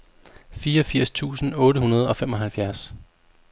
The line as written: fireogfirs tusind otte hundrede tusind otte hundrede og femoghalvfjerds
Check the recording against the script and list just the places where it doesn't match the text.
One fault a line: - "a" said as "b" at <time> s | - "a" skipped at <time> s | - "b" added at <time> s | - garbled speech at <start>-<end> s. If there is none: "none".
- "tusind otte hundrede" skipped at 2.1 s